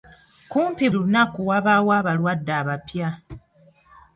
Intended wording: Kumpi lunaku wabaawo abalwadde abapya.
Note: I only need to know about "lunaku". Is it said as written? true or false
true